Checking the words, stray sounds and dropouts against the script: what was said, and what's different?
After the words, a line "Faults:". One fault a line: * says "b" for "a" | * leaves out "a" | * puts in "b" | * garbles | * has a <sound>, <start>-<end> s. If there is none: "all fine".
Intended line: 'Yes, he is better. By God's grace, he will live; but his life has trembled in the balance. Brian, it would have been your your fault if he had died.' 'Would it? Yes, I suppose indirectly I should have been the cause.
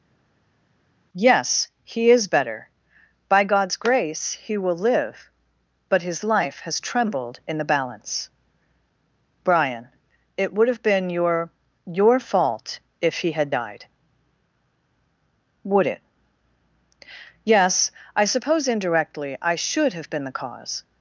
'Yes, he is better. By God's grace, he will live; but his life has trembled in the balance. Brian, it would have been your your fault if he had died.' 'Would it? Yes, I suppose indirectly I should have been the cause.
Faults:
all fine